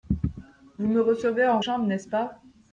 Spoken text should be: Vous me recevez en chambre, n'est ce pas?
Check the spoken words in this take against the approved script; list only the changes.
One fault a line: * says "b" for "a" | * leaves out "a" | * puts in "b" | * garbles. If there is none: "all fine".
all fine